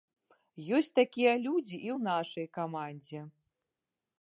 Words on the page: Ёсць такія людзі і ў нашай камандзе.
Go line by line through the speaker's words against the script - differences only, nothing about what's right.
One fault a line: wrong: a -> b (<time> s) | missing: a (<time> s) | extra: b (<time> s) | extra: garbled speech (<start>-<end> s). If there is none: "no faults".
no faults